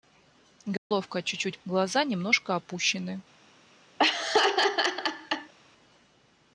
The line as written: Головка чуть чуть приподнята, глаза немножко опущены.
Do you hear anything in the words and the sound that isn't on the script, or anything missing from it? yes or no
yes